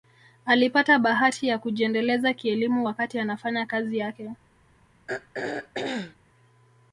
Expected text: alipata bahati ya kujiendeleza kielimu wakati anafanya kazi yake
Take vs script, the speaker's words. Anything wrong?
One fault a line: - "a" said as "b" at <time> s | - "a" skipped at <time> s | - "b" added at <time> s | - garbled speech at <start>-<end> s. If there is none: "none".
none